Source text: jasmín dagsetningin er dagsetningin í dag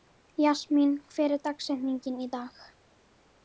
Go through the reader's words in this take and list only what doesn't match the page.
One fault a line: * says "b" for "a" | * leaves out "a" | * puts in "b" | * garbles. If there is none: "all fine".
* says "hver" for "dagsetningin"